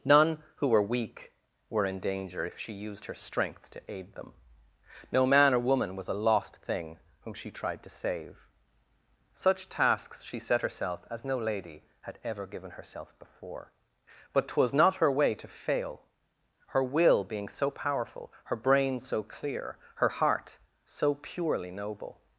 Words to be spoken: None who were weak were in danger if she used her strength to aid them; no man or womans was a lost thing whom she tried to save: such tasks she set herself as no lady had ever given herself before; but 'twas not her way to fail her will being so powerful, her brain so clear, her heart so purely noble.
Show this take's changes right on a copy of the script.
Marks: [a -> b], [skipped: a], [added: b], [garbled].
None who were weak were in danger if she used her strength to aid them; no man or [womans -> woman] was a lost thing whom she tried to save: such tasks she set herself as no lady had ever given herself before; but 'twas not her way to fail her will being so powerful, her brain so clear, her heart so purely noble.